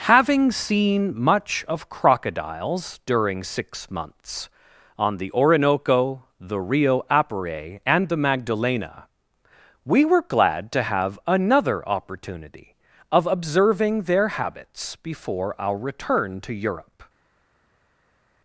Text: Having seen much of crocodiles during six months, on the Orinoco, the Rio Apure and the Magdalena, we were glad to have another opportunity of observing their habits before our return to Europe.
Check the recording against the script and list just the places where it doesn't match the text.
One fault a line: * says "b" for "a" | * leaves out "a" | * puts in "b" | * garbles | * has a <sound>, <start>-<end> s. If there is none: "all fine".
all fine